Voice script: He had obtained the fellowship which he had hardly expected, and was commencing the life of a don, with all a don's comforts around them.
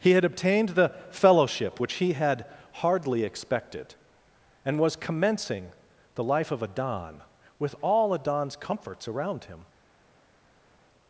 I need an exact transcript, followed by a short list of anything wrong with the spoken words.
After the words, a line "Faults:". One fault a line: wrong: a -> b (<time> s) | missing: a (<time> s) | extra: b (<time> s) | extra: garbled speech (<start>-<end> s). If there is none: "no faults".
He had obtained the fellowship which he had hardly expected, and was commencing the life of a don, with all a don's comforts around him.
Faults:
wrong: them -> him (9.4 s)